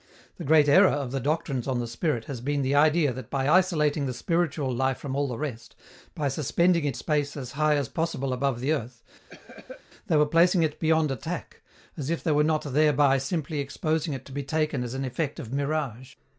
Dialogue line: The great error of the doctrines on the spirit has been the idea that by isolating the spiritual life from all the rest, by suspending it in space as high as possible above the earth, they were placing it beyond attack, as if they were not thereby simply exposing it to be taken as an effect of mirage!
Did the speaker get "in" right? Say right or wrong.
wrong